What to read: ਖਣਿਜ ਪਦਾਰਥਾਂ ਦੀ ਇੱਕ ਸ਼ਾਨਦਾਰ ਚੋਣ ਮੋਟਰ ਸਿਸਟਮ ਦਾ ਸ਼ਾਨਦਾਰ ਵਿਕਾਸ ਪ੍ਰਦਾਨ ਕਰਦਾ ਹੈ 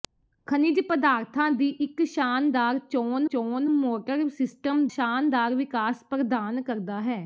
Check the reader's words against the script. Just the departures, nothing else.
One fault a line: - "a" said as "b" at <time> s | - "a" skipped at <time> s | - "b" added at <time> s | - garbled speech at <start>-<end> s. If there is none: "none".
- "ਚੋਣ" added at 3.3 s
- "ਦਾ" skipped at 4.9 s